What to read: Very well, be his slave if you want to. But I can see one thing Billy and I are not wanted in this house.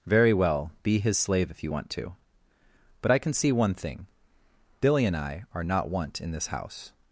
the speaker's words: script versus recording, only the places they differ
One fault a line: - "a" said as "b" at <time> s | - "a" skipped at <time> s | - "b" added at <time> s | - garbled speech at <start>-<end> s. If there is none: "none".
- "wanted" said as "want" at 5.9 s